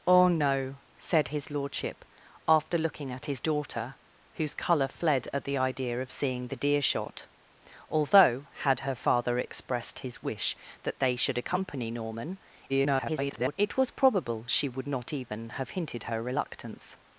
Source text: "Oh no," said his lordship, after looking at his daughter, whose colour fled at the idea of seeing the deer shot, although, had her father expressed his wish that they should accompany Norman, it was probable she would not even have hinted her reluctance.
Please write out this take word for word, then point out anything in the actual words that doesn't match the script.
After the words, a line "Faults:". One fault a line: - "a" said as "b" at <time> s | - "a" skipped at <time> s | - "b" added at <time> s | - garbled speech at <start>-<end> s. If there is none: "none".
"Oh no," said his lordship, after looking at his daughter, whose colour fled at the idea of seeing the deer shot, although, had her father expressed his wish that they should accompany Norman, [garbled] it was probable she would not even have hinted her reluctance.
Faults:
- garbled speech at 12.7-13.6 s